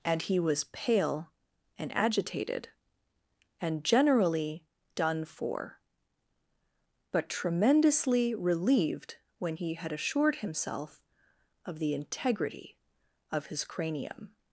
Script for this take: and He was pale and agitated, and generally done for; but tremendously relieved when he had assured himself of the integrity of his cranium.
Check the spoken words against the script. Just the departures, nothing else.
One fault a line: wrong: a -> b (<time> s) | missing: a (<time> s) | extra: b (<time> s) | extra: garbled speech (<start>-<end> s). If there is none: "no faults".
no faults